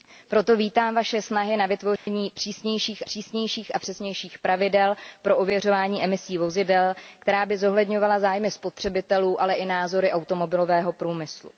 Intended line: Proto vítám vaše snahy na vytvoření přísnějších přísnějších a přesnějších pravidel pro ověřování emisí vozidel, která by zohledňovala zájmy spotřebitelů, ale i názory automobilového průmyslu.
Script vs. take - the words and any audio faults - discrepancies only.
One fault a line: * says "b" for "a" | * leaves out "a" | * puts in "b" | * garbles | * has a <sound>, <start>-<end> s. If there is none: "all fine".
* has a dropout, 2.0-2.1 s